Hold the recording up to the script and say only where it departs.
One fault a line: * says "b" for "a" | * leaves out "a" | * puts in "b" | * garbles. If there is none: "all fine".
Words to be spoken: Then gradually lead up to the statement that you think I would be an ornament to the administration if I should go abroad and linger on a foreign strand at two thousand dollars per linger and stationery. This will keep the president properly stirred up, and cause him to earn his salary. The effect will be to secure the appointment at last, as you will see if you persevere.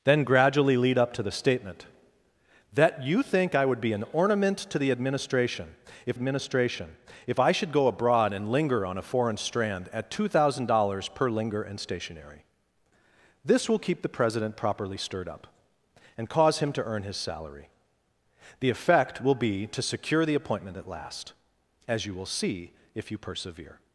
* puts in "administration if"